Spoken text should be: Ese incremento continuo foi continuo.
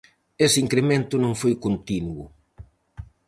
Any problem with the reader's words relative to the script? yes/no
yes